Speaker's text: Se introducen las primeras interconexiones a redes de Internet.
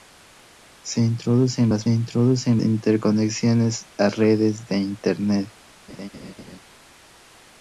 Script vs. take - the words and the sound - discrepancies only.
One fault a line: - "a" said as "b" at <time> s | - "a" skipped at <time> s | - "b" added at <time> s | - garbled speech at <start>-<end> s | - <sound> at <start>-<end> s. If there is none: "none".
- "primeras" said as "introducen" at 1.9 s
- laugh at 5.9-6.6 s